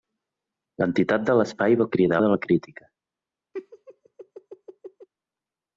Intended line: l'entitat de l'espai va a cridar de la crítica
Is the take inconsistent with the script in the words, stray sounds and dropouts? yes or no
yes